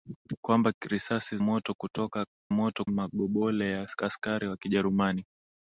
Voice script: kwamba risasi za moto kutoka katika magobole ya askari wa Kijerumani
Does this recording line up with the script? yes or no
no